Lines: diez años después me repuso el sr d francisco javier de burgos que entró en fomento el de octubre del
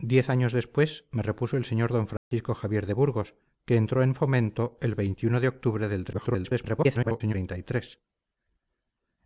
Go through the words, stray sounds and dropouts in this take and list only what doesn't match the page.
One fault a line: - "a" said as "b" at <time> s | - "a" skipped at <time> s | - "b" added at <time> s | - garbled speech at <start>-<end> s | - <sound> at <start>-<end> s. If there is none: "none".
- dropout at 2.2-2.3 s
- garbled speech at 6.1-7.3 s